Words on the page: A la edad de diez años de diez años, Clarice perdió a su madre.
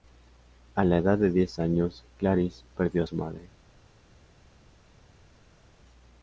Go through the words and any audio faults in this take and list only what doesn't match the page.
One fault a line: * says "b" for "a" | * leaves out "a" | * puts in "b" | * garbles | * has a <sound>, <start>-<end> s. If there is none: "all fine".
* leaves out "de diez años"